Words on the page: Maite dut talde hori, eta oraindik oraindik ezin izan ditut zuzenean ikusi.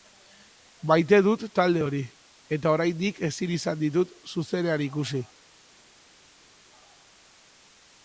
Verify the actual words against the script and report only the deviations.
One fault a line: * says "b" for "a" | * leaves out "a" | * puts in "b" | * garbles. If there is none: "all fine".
* leaves out "oraindik"